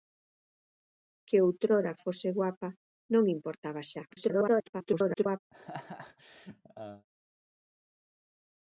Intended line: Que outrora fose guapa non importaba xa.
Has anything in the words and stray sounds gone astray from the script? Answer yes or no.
yes